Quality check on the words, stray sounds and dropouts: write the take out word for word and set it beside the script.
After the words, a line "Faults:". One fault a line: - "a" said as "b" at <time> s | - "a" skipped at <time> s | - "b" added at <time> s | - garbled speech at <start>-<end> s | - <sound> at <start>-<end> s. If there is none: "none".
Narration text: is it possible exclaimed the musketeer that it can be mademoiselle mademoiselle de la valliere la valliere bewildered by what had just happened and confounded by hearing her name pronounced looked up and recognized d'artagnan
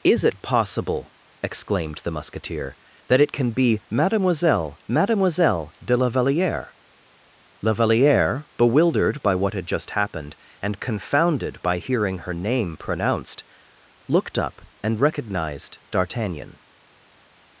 is it possible exclaimed the musketeer that it can be mademoiselle mademoiselle de la valliere la valliere bewildered by what had just happened and confounded by hearing her name pronounced looked up and recognized d'artagnan
Faults:
none